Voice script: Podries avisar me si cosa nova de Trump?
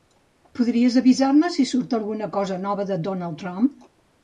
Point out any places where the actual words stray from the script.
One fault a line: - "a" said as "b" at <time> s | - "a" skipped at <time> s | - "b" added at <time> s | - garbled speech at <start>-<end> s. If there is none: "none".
- "surt alguna" added at 1.7 s
- "Donald" added at 3.1 s